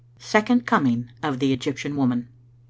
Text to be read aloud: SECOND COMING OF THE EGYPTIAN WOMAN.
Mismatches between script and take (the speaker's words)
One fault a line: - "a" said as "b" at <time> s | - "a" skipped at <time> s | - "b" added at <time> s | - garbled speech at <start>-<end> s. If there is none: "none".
none